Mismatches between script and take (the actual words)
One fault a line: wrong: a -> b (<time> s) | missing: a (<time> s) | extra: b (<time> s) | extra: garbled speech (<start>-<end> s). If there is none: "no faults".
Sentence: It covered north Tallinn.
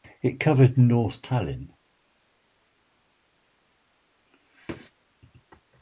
no faults